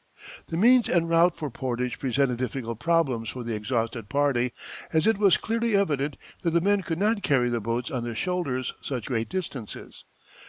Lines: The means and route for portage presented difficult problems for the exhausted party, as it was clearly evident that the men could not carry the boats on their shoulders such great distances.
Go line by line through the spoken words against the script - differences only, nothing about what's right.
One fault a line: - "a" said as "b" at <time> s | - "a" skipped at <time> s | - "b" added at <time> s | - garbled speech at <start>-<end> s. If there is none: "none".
none